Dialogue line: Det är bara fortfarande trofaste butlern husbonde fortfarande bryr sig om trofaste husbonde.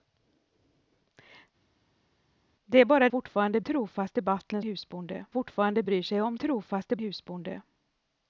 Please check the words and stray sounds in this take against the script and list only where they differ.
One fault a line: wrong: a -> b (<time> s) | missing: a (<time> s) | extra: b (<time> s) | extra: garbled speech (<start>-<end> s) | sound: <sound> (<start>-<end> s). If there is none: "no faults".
no faults